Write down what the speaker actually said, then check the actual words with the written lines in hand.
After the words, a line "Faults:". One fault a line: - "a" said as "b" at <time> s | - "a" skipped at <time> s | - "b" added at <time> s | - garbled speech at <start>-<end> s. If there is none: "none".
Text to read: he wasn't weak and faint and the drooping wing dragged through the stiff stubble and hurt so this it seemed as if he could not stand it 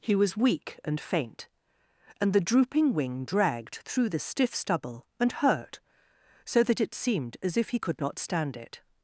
he was weak and faint and the drooping wing dragged through the stiff stubble and hurt so that it seemed as if he could not stand it
Faults:
- "wasn't" said as "was" at 0.1 s
- "this" said as "that" at 6.6 s